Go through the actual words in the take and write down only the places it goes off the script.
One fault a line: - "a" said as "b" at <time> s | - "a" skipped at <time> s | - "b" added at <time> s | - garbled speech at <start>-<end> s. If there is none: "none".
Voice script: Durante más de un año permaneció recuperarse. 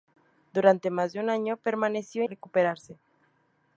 none